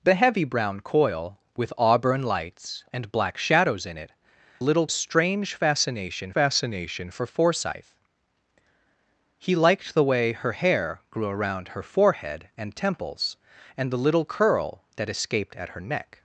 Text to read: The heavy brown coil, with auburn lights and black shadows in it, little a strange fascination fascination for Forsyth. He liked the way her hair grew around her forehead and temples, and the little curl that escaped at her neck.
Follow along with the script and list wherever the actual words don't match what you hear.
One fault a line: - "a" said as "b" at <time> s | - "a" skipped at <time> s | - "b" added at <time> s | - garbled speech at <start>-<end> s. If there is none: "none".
none